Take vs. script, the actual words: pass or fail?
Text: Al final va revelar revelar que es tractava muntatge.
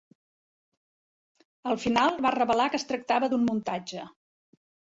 fail